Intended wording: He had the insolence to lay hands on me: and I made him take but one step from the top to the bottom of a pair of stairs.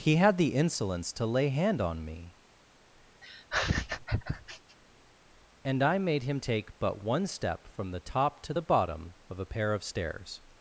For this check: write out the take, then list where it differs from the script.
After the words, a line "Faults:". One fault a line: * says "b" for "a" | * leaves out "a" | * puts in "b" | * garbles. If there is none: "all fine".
He had the insolence to lay hand on me: and I made him take but one step from the top to the bottom of a pair of stairs.
Faults:
* says "hand" for "hands"